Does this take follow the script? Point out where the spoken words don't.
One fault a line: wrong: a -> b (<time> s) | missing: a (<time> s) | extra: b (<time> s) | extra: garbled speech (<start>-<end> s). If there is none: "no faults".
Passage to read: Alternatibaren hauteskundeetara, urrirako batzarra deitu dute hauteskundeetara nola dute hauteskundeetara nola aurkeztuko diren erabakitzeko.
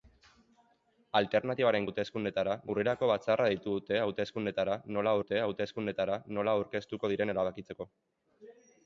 no faults